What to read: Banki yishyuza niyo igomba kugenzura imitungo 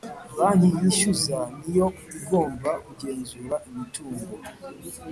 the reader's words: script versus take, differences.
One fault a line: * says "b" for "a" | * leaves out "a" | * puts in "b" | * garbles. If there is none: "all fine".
all fine